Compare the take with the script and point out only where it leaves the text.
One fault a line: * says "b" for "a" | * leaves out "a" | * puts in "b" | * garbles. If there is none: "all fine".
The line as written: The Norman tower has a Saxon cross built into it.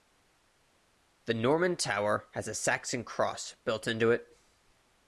all fine